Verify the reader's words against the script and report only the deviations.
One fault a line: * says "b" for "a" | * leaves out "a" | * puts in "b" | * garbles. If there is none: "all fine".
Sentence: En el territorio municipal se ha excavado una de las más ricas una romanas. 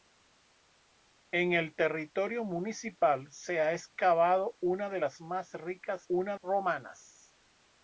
all fine